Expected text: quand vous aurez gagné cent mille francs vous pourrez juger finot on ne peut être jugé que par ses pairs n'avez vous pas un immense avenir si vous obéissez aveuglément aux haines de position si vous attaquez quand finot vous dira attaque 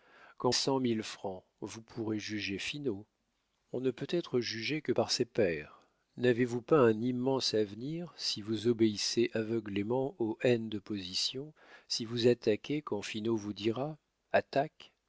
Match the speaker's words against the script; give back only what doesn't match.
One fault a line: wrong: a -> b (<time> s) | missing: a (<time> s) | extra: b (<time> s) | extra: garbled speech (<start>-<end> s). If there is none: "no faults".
missing: vous aurez gagné (0.5 s)